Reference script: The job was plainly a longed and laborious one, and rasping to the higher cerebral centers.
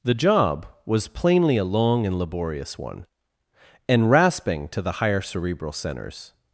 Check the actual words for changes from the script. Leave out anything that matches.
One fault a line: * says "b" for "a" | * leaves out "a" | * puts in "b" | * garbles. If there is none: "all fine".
* says "long" for "longed"